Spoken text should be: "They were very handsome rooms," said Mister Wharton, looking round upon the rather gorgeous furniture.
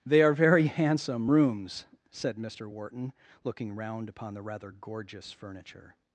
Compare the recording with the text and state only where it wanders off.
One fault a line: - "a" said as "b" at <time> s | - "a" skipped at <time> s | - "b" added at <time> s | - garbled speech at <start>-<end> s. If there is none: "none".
- "were" said as "are" at 0.2 s